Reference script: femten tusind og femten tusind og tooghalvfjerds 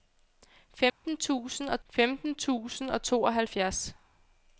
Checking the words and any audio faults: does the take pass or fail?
fail